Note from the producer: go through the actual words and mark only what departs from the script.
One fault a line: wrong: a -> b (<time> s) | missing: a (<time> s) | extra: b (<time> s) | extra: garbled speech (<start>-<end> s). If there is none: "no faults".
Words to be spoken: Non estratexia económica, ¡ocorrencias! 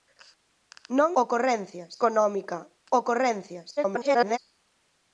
wrong: estratexia -> ocorrencias (1.2 s)
extra: garbled speech (3.8-4.4 s)